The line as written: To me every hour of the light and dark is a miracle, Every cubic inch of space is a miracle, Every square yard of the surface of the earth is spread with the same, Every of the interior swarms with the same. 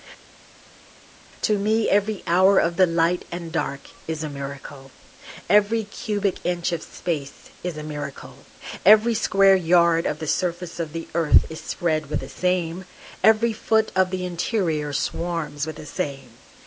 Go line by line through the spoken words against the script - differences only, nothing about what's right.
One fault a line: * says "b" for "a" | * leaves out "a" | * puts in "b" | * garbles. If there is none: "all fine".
* puts in "foot"